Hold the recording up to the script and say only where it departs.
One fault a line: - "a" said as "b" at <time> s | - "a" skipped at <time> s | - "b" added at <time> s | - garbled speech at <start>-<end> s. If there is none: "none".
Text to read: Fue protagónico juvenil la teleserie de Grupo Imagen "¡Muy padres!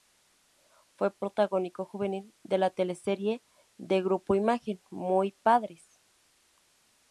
- "de" added at 2.4 s